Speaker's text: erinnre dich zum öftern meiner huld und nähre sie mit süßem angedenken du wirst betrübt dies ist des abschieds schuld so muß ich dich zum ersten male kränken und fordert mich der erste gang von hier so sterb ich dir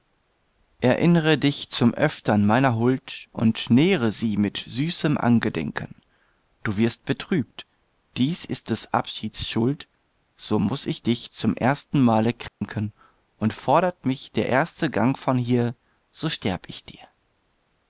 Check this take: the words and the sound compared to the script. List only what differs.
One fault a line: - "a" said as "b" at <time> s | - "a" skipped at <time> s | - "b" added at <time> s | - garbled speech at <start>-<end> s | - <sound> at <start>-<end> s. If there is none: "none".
- dropout at 12.5-12.6 s